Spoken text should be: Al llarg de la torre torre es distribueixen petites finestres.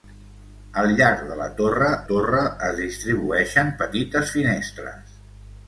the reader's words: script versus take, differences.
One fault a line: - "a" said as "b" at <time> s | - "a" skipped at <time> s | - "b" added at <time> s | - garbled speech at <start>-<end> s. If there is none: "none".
none